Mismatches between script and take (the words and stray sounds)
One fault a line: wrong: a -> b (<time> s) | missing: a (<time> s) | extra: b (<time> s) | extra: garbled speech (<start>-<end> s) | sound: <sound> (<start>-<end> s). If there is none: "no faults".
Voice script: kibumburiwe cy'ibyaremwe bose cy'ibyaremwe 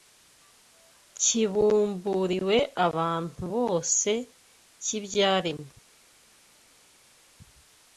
wrong: cy'ibyaremwe -> abantu (2.9 s)